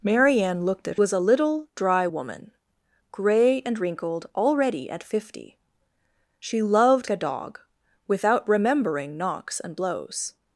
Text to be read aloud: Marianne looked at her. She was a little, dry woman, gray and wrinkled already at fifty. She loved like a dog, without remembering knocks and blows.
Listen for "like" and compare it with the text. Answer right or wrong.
wrong